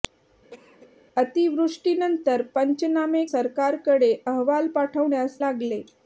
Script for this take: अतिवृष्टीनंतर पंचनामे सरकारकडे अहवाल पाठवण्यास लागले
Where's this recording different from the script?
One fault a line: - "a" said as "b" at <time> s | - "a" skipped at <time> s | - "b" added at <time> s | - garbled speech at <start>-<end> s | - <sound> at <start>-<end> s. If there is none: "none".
- cough at 0.5-0.9 s